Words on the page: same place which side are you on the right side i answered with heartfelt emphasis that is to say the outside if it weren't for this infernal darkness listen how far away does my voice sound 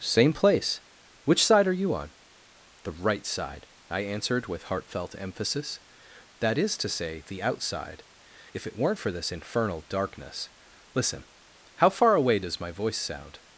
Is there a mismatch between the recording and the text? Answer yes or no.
no